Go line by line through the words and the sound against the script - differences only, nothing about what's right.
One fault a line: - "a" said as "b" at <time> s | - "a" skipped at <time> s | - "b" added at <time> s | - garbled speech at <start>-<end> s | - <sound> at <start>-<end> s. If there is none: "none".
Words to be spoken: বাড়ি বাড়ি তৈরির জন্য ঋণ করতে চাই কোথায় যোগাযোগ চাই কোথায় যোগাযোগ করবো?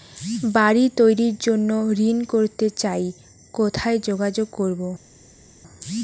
- "বাড়ি" skipped at 0.8 s
- "চাই কোথায় যোগাযোগ" skipped at 4.5 s